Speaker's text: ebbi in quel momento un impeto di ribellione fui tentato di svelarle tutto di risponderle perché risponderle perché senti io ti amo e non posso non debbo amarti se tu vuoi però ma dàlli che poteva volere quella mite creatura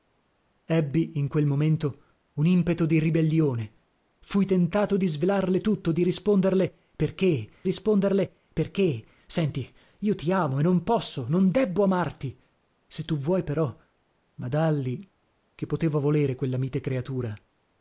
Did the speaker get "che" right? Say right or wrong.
right